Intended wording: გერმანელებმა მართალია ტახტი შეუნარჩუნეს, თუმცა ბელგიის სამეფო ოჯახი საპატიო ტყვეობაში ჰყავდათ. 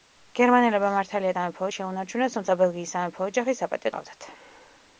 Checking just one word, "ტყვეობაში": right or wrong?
wrong